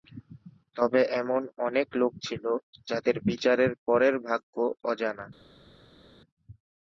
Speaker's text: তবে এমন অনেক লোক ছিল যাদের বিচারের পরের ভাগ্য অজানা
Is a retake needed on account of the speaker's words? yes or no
no